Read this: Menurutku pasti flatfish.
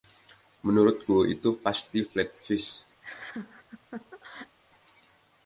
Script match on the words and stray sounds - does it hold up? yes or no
no